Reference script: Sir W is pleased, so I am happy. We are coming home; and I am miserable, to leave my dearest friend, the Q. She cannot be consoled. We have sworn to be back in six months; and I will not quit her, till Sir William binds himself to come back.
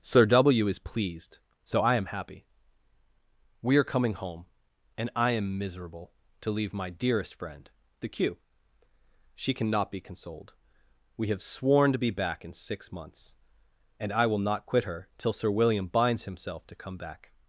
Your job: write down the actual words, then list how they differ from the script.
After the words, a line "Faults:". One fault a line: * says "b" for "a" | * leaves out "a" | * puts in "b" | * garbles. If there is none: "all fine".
Sir W is pleased, so I am happy. We are coming home; and I am miserable, to leave my dearest friend, the Q. She cannot be consoled. We have sworn to be back in six months; and I will not quit her, till Sir William binds himself to come back.
Faults:
all fine